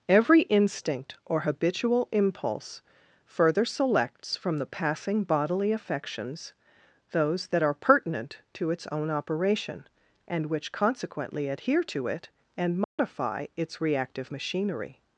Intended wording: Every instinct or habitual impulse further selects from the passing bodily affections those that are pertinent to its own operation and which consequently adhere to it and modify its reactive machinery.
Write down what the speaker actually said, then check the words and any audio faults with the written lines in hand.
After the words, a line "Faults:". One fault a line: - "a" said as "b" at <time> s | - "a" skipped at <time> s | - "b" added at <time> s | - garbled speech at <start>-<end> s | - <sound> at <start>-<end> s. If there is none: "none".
Every instinct or habitual impulse further selects from the passing bodily affections those that are pertinent to its own operation and which consequently adhere to it and modify its reactive machinery.
Faults:
- dropout at 12.8-13.0 s